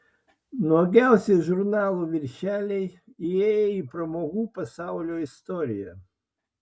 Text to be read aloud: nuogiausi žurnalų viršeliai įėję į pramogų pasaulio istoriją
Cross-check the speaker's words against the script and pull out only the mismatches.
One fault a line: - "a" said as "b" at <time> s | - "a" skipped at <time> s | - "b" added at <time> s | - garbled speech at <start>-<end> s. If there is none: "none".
none